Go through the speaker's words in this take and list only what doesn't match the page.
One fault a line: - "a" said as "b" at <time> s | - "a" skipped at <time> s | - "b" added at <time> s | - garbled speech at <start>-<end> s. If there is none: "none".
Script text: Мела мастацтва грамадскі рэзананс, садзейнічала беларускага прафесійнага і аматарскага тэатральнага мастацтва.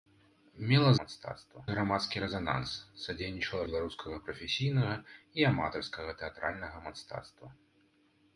none